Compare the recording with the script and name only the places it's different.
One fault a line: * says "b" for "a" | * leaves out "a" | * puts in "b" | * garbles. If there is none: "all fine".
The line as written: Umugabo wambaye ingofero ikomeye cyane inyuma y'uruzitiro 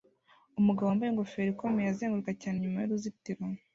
* puts in "azenguruka"